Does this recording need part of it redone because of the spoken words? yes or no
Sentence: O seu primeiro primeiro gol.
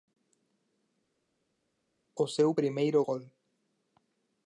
yes